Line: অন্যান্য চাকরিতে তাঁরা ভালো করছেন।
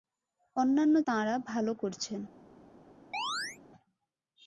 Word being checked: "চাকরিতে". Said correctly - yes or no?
no